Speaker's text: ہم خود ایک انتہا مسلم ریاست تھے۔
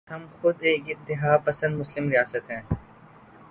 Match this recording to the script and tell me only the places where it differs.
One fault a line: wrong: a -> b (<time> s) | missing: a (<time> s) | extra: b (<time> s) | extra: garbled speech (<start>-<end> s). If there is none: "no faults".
extra: پسند (1.4 s)
wrong: تھے -> ہیں (2.5 s)